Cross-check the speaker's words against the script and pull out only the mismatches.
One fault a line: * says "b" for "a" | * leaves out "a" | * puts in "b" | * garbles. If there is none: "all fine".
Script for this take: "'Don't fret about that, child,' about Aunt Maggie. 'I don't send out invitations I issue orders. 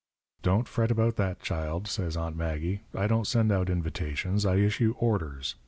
* says "says" for "about"